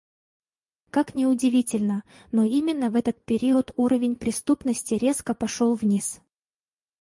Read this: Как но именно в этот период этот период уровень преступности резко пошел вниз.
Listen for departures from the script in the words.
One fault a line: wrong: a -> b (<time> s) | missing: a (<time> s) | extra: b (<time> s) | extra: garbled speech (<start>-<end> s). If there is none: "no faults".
extra: ни удивительно (1.1 s)
missing: этот период (3.7 s)